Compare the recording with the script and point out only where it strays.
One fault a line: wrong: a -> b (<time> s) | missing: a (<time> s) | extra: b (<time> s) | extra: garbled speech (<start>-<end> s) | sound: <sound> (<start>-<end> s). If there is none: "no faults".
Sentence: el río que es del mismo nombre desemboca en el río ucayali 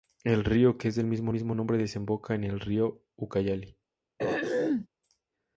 extra: mismo (1.3 s)
sound: throat clearing (4.2-4.9 s)